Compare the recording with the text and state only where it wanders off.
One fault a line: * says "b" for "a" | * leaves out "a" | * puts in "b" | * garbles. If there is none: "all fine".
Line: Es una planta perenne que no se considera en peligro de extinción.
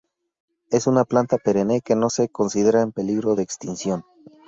all fine